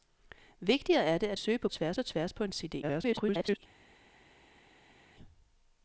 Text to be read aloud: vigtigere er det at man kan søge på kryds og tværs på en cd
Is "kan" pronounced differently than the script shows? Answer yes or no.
yes